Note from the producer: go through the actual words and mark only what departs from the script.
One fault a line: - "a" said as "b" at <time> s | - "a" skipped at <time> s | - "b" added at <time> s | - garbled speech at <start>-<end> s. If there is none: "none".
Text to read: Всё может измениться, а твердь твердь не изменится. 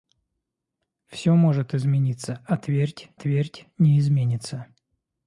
none